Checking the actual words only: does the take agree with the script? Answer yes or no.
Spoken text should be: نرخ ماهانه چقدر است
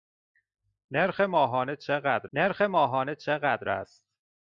no